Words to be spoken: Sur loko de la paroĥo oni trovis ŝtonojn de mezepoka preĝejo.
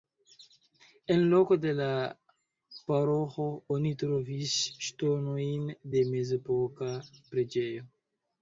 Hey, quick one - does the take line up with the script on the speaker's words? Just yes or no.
no